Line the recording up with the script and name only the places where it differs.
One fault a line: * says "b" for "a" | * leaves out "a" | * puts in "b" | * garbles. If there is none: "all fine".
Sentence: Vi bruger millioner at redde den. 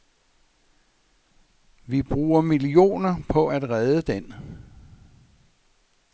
* puts in "på"